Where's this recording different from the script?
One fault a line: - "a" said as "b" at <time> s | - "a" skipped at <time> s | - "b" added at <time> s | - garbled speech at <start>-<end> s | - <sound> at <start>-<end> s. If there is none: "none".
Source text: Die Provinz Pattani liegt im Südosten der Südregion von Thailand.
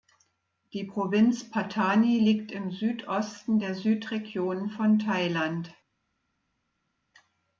none